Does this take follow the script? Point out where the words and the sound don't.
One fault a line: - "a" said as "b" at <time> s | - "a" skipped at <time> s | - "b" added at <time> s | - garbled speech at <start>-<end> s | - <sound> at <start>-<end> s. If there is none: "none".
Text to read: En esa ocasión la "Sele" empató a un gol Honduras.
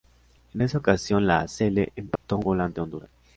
- dropout at 2.2-2.2 s
- "ante" added at 2.6 s